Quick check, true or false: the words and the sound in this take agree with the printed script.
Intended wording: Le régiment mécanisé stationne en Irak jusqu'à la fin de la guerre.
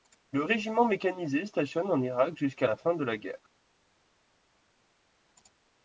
true